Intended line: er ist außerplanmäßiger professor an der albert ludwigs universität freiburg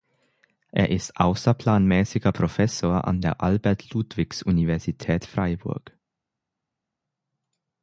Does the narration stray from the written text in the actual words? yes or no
no